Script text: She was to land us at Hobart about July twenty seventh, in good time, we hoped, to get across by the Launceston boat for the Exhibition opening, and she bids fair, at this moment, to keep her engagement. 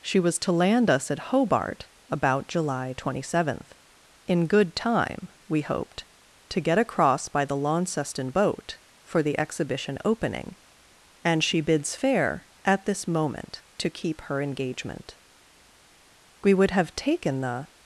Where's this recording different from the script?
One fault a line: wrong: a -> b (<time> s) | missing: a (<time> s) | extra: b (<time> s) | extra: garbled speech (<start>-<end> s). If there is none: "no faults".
extra: We would have taken the (16.4 s)